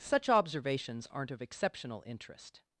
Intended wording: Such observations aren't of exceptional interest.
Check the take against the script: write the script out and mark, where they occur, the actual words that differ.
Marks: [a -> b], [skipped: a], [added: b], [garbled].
Such observations aren't of exceptional interest.